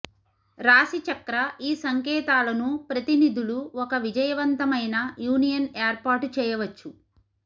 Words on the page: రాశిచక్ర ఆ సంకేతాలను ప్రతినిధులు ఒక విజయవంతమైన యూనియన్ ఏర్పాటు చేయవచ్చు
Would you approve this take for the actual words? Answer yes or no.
no